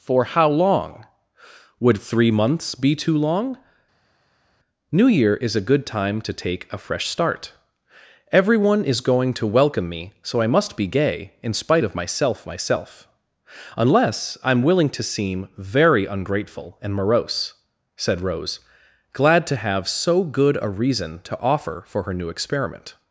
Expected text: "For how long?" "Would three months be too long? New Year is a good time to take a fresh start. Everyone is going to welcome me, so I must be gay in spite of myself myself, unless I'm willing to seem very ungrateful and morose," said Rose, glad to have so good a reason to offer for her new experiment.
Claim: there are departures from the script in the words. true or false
false